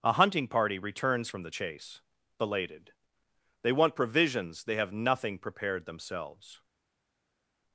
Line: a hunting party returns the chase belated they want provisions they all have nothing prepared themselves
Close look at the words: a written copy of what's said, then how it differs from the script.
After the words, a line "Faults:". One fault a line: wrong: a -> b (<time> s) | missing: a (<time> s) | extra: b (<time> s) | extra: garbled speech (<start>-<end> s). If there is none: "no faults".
a hunting party returns from the chase belated they want provisions they have nothing prepared themselves
Faults:
extra: from (1.3 s)
missing: all (4.7 s)